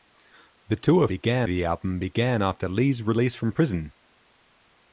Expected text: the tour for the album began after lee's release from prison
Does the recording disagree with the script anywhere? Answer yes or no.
yes